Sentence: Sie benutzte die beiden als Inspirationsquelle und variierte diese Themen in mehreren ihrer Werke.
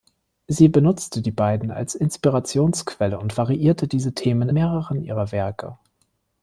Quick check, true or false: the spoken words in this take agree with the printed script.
false